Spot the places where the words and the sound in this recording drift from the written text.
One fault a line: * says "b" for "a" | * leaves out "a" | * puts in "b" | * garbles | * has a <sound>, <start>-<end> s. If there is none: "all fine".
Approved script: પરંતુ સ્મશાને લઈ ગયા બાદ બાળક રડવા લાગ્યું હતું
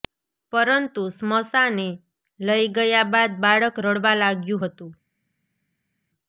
all fine